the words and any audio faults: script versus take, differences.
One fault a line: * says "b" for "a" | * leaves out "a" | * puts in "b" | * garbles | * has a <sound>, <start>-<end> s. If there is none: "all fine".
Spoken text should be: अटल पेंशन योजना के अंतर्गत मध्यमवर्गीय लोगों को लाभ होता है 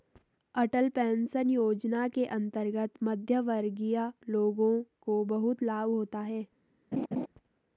* puts in "बहुत"
* has a laugh, 6.9-7.3 s